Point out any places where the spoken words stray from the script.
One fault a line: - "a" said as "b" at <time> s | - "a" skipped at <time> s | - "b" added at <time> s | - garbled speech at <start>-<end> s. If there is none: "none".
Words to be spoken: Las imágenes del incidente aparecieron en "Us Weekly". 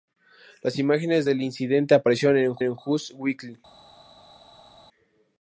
- "en" added at 2.6 s